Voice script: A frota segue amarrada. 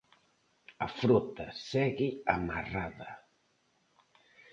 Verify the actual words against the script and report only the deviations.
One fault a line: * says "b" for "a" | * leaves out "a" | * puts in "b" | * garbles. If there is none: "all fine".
all fine